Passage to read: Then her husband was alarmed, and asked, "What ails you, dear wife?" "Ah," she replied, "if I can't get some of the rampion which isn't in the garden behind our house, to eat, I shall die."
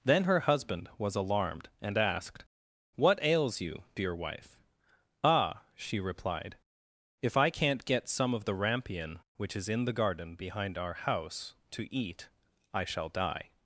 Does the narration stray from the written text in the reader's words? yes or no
yes